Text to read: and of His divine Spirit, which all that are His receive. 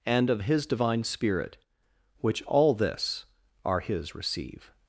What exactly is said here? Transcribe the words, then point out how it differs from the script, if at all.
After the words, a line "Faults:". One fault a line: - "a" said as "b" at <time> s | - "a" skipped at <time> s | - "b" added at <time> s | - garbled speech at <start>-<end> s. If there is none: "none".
and of His divine Spirit, which all this are His receive.
Faults:
- "that" said as "this" at 2.7 s